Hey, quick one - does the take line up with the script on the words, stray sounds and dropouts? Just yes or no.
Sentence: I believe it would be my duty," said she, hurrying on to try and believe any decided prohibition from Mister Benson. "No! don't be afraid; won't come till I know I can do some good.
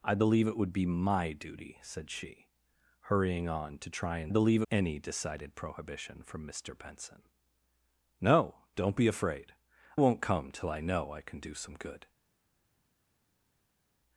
yes